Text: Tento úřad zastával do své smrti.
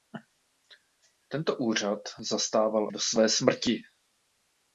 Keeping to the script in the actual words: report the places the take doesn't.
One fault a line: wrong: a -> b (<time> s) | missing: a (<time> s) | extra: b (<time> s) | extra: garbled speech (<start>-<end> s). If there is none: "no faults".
no faults